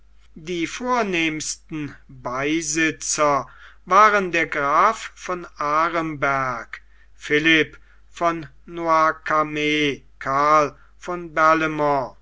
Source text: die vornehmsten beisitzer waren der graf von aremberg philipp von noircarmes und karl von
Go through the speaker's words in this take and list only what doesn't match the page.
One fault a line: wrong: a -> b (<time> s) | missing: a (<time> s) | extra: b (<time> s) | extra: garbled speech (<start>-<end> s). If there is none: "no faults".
missing: und (10.0 s)